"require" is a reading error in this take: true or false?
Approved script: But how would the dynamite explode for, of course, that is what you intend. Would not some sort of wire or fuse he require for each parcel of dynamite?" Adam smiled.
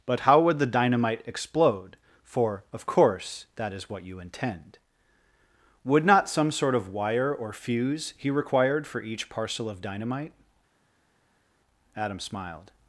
true